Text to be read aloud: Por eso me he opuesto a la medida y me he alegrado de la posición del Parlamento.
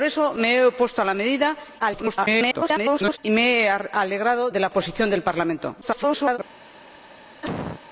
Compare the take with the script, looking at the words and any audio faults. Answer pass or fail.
fail